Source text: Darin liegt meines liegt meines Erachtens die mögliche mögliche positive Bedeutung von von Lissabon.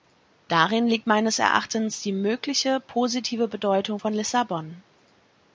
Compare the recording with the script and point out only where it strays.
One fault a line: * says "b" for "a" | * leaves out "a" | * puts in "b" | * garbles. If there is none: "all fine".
* leaves out "liegt meines"
* leaves out "mögliche"
* leaves out "von"